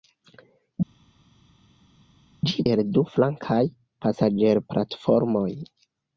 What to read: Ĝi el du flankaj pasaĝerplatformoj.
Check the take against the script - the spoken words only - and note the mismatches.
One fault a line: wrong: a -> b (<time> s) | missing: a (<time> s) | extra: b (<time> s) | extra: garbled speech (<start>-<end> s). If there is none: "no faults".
no faults